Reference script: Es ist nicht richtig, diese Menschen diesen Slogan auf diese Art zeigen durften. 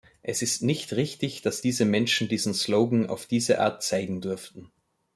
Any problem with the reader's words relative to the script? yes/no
yes